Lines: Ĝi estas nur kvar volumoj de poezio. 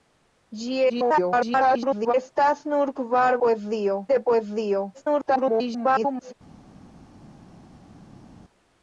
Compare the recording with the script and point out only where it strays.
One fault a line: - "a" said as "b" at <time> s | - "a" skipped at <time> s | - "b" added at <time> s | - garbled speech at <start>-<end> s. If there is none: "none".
- garbled speech at 0.9-2.1 s
- "volumoj" said as "poezio" at 3.4 s
- garbled speech at 4.9-6.3 s